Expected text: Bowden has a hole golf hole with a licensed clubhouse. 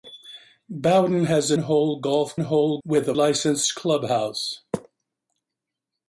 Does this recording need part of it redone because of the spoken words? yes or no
no